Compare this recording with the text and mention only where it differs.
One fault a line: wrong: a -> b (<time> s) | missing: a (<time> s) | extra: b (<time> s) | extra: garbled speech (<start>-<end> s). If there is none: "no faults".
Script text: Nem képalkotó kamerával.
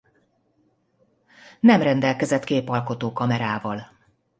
extra: rendelkezett (1.8 s)